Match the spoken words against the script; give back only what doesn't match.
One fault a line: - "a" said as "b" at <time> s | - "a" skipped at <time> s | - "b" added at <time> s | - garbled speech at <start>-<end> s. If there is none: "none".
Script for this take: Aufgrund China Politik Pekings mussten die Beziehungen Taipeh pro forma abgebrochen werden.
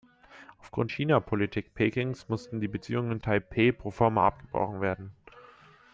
none